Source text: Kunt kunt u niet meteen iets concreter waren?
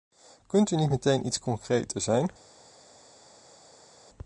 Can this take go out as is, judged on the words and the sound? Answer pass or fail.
fail